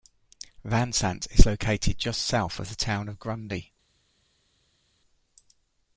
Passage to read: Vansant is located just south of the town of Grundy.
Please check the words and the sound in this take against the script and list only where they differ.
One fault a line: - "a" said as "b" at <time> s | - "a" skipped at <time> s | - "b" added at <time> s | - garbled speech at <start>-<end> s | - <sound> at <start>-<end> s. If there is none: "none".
none